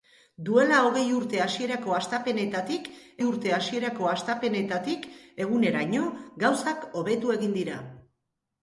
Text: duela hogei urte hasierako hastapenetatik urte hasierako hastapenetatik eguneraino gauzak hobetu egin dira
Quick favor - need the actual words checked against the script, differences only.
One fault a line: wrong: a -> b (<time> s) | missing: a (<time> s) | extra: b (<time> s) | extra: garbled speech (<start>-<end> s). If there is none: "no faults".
no faults